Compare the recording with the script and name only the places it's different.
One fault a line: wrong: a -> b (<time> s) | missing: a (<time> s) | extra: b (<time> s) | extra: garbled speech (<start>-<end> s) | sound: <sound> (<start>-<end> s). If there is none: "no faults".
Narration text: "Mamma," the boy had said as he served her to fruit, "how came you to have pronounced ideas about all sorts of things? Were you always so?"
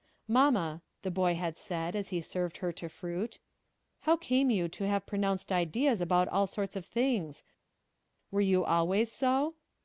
no faults